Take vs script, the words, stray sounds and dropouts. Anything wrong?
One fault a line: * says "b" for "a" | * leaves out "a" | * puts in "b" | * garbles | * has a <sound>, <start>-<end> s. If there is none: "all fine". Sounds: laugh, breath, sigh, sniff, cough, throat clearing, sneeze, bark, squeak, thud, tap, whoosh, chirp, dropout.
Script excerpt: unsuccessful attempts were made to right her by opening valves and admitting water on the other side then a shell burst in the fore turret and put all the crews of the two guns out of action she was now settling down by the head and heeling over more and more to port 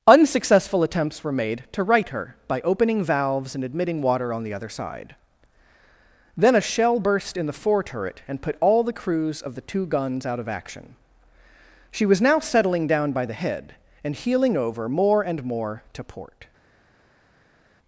all fine